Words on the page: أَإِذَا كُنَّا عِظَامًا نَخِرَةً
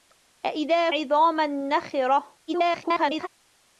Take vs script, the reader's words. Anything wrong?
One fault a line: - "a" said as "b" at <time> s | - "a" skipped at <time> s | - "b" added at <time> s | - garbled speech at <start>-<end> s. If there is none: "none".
- "كُنَّا" skipped at 0.9 s
- garbled speech at 2.5-3.3 s